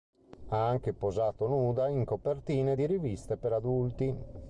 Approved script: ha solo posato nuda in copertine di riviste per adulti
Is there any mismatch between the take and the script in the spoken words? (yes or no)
yes